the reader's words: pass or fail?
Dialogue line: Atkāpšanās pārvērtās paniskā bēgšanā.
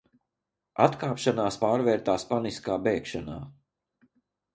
pass